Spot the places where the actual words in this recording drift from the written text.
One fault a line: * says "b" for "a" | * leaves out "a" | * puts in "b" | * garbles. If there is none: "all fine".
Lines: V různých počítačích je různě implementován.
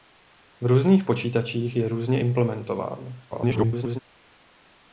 * garbles